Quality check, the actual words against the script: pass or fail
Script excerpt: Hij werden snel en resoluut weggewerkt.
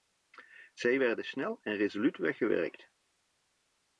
fail